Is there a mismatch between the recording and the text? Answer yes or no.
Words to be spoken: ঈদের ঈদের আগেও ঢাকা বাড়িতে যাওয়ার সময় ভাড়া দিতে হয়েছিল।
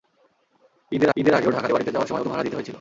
no